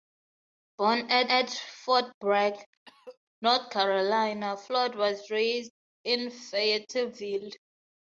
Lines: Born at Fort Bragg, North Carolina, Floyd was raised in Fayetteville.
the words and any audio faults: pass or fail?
fail